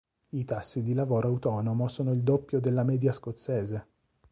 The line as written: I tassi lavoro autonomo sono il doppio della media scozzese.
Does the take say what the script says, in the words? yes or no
no